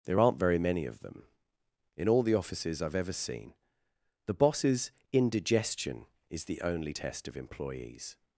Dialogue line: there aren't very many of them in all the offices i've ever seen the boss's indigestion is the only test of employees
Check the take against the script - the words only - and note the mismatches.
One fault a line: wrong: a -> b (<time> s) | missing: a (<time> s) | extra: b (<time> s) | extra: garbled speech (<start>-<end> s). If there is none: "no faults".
no faults